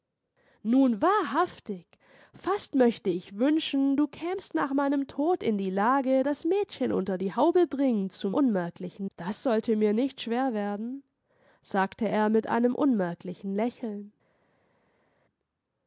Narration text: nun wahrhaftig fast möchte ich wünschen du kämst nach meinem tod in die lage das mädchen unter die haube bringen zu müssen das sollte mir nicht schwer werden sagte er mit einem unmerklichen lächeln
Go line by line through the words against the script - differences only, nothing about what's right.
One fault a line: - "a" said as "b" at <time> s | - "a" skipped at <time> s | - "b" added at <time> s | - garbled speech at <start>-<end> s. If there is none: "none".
- "müssen" said as "unmerklichen" at 8.3 s